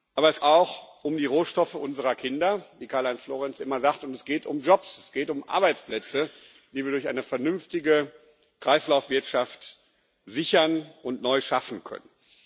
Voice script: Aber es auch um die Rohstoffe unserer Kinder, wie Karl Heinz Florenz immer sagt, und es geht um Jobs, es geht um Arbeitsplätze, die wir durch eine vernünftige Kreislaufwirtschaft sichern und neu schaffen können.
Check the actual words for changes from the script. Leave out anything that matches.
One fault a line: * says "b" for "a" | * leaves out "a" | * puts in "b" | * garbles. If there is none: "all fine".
all fine